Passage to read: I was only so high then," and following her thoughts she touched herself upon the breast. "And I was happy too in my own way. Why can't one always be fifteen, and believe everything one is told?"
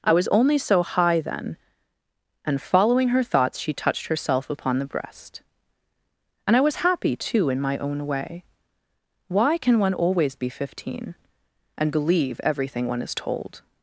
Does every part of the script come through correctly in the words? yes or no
no